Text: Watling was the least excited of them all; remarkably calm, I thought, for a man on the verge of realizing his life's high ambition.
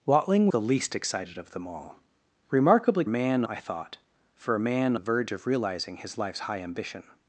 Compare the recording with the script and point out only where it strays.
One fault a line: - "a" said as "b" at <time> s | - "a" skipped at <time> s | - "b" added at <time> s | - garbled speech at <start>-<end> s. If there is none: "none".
- "was" skipped at 0.5 s
- "calm" said as "man" at 3.1 s
- "on" skipped at 4.9 s